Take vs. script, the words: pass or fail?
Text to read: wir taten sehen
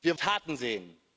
pass